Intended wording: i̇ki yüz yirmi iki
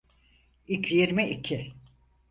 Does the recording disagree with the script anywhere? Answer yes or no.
yes